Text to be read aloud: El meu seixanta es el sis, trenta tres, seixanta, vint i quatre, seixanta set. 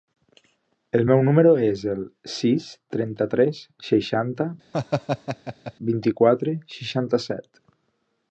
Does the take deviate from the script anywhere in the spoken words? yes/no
yes